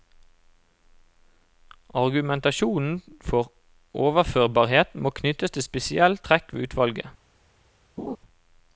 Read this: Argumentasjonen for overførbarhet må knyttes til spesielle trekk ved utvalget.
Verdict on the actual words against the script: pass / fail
pass